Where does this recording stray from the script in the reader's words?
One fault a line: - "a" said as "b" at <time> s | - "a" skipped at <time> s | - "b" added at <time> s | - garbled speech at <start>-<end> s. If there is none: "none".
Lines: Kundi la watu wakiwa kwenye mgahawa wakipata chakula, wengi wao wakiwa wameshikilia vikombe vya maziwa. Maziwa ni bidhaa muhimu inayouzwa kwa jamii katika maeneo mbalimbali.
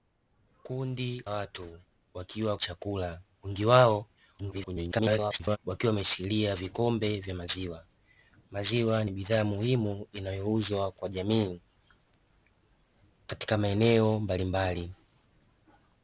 - "la" skipped at 1.2 s
- "kwenye mgahawa wakipata" skipped at 2.6 s
- garbled speech at 4.4-5.6 s